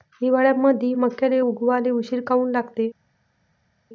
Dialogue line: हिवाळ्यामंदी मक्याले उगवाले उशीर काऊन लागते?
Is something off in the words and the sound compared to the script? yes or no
no